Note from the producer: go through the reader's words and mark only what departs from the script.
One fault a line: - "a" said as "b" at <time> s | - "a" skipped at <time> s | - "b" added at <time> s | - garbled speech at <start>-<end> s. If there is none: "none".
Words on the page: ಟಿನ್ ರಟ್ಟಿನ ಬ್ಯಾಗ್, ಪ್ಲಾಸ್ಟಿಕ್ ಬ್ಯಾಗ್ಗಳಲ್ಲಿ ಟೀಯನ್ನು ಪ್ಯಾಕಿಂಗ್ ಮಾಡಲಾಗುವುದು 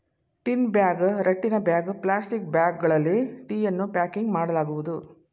- "ಬ್ಯಾಗ್" added at 0.7 s